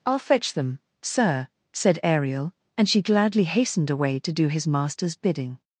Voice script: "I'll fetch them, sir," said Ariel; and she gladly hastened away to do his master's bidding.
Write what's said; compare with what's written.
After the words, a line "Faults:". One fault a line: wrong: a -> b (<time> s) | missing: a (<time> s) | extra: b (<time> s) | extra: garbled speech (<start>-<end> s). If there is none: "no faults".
"I'll fetch them, sir," said Ariel; and she gladly hastened away to do his master's bidding.
Faults:
no faults